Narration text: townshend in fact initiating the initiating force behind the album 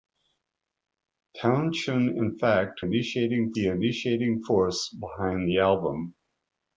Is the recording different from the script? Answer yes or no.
no